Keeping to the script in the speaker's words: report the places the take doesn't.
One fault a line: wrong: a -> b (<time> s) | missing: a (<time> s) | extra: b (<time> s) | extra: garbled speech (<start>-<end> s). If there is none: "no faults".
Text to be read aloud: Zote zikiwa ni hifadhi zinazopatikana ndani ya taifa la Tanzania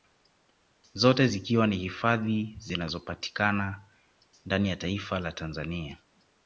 no faults